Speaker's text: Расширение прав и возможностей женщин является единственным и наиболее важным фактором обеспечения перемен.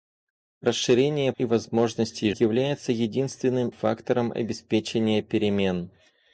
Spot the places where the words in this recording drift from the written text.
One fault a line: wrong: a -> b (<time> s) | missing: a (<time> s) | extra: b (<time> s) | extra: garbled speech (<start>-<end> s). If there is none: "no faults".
missing: прав (1.3 s)
missing: женщин (2.3 s)
missing: и наиболее важным (3.7 s)